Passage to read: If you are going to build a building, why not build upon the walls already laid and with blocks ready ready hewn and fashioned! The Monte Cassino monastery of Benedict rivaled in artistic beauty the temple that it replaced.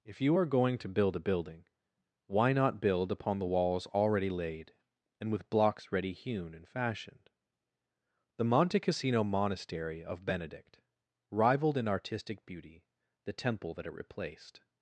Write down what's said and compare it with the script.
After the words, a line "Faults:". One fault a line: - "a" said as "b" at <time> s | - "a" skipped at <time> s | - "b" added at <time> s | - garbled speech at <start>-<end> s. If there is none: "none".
If you are going to build a building, why not build upon the walls already laid and with blocks ready hewn and fashioned! The Monte Cassino monastery of Benedict rivaled in artistic beauty the temple that it replaced.
Faults:
- "ready" skipped at 6.1 s